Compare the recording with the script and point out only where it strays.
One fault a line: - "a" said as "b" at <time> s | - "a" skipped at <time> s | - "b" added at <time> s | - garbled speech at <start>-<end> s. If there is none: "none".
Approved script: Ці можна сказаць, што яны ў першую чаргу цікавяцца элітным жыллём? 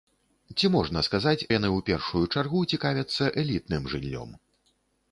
- "што" skipped at 1.5 s